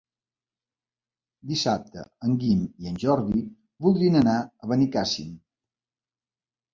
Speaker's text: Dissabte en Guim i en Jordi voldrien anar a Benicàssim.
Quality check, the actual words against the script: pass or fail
pass